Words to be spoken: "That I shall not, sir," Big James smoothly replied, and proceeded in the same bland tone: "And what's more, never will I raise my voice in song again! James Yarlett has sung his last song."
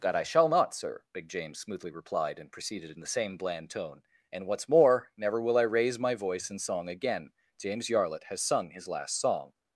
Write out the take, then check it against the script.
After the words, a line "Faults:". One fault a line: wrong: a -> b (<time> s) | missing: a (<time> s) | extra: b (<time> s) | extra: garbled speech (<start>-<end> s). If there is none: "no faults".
"That I shall not, sir," Big James smoothly replied, and proceeded in the same bland tone: "And what's more, never will I raise my voice in song again! James Yarlett has sung his last song."
Faults:
no faults